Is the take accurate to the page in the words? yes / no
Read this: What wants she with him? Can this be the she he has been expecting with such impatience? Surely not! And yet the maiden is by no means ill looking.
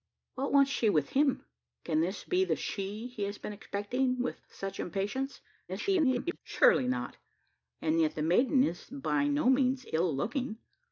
no